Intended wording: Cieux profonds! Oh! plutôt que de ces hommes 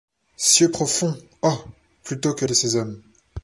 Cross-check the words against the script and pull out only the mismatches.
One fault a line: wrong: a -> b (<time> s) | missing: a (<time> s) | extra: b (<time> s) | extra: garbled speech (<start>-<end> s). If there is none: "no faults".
no faults